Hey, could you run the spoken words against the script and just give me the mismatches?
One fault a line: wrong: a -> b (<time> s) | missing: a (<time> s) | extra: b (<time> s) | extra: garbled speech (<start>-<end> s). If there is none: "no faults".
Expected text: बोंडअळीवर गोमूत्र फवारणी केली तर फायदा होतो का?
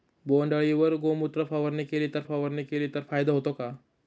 extra: फवारणी केली तर (2.2 s)